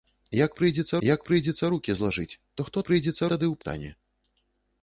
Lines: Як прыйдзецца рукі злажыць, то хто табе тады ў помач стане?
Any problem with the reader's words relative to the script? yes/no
yes